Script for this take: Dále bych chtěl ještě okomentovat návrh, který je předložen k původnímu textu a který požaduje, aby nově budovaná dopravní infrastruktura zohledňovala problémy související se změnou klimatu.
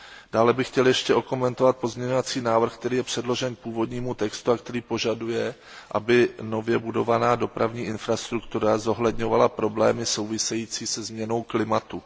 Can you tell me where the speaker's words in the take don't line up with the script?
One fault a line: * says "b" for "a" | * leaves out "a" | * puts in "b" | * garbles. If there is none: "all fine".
* puts in "pozměňovací"